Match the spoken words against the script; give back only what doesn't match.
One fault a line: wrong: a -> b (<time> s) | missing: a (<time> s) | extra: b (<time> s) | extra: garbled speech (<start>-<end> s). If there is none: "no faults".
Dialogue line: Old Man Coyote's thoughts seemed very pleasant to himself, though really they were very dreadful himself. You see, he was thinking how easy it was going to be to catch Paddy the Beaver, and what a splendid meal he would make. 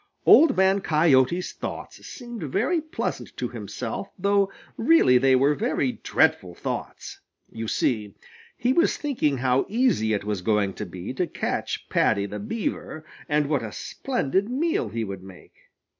wrong: himself -> thoughts (6.5 s)